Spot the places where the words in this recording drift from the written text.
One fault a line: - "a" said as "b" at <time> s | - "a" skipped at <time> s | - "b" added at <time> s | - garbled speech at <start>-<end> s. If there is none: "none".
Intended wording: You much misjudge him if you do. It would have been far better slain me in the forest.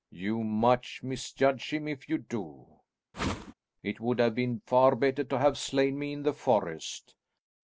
- "to have" added at 5.2 s